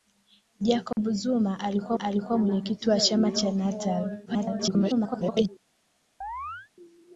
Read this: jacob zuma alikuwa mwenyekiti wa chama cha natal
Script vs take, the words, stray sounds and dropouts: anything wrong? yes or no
yes